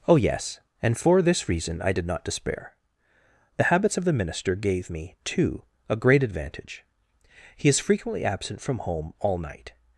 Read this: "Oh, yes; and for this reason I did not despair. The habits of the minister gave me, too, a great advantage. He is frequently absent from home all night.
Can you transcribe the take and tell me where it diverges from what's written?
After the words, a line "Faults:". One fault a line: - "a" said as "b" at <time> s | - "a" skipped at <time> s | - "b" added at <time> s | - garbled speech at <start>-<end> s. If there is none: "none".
"Oh, yes; and for this reason I did not despair. The habits of the minister gave me, too, a great advantage. He is frequently absent from home all night.
Faults:
none